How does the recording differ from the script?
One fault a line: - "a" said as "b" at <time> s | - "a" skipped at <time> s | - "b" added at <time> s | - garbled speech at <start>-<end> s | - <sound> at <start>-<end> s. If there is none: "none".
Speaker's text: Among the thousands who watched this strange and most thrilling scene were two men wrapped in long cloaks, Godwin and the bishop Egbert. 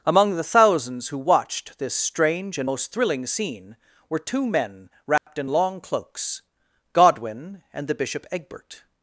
- dropout at 5.2-5.3 s